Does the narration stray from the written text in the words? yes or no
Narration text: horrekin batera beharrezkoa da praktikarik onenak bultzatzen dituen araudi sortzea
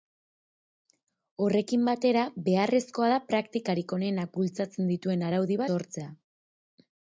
no